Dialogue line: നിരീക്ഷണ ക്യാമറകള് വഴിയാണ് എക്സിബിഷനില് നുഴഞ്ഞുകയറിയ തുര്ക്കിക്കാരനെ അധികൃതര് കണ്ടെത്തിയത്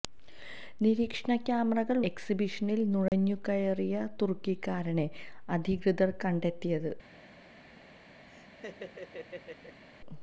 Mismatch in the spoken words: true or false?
true